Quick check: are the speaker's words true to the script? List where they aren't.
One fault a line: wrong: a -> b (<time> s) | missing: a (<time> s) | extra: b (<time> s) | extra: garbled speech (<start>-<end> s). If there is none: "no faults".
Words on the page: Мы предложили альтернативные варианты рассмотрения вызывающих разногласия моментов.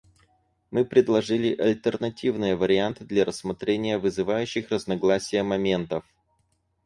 extra: для (3.0 s)